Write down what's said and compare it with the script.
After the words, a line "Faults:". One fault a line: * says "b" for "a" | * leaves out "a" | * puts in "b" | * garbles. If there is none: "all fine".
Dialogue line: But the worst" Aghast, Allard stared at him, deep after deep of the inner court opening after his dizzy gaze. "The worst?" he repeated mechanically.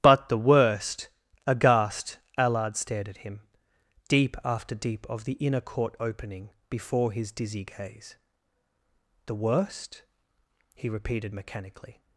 But the worst" Aghast, Allard stared at him, deep after deep of the inner court opening before his dizzy gaze. "The worst?" he repeated mechanically.
Faults:
* says "before" for "after"